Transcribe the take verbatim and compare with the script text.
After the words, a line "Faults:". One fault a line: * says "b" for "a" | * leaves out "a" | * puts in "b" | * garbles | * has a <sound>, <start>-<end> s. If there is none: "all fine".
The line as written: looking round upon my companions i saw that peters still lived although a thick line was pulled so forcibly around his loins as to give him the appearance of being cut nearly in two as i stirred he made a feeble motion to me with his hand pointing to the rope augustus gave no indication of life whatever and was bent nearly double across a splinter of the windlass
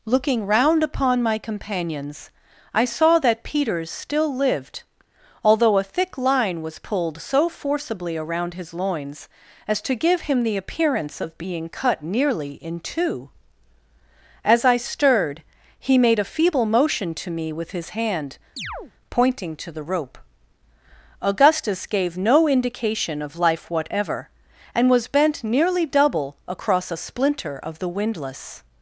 looking round upon my companions i saw that peters still lived although a thick line was pulled so forcibly around his loins as to give him the appearance of being cut nearly in two as i stirred he made a feeble motion to me with his hand pointing to the rope augustus gave no indication of life whatever and was bent nearly double across a splinter of the windlass
Faults:
* has a chirp, 18.6-18.9 s